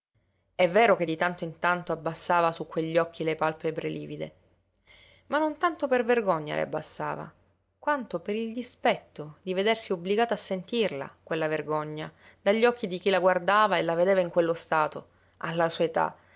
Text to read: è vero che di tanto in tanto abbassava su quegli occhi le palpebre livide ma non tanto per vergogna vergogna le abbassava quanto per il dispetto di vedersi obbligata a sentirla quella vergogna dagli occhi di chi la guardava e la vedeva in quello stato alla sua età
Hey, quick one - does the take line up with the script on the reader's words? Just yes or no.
no